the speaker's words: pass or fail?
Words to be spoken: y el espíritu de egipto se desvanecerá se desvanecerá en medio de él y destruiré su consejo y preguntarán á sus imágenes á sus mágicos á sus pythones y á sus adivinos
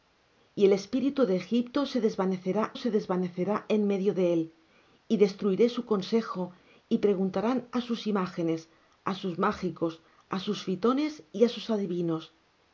pass